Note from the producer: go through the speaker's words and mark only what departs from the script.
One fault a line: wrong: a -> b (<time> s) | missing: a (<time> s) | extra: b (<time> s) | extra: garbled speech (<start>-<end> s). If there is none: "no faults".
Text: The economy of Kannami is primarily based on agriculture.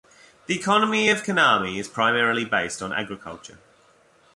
no faults